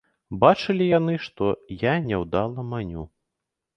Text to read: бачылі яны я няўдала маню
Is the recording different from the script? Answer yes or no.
yes